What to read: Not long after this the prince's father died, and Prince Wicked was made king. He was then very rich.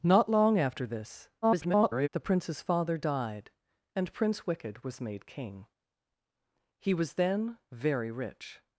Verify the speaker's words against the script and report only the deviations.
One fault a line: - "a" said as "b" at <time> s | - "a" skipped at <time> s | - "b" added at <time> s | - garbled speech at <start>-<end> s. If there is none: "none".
- garbled speech at 1.4-2.1 s